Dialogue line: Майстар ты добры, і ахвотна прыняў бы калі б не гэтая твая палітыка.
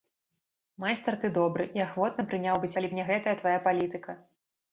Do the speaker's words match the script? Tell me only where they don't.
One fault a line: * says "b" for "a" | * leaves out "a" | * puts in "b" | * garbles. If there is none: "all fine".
all fine